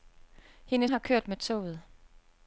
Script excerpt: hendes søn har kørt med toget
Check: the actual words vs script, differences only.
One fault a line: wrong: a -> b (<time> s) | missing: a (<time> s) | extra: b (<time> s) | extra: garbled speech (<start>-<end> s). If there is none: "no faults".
missing: søn (0.9 s)